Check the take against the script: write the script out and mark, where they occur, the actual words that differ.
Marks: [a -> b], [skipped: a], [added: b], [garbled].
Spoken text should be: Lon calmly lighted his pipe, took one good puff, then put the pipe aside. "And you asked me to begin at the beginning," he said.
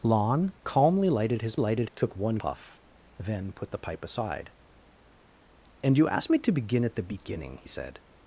Lon calmly lighted his [pipe, -> lighted] took one [skipped: good] puff, then put the pipe aside. "And you asked me to begin at the beginning," [skipped: he] said.